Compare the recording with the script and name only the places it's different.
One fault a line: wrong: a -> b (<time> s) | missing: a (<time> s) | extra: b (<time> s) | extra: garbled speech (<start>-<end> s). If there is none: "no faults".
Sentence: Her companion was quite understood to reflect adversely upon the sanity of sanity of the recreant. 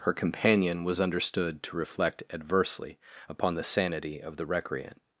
missing: quite (1.0 s)
missing: sanity of (4.4 s)